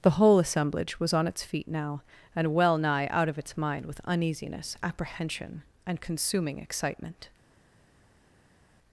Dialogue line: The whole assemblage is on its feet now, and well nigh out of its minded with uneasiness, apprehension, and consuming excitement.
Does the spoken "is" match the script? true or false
false